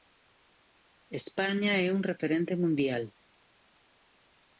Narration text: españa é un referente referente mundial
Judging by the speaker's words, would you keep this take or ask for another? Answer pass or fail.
fail